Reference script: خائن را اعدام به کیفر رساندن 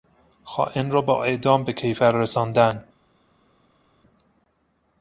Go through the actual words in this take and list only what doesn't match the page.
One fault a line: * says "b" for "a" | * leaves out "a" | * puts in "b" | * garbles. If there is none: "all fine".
* puts in "با"